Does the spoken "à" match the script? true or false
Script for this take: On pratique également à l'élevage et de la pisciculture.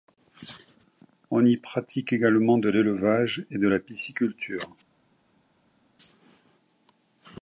false